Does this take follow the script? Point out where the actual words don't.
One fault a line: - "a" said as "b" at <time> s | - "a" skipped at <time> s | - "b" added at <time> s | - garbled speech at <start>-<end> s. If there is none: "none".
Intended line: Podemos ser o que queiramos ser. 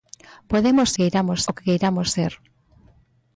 - "ser" said as "queiramos" at 1.0 s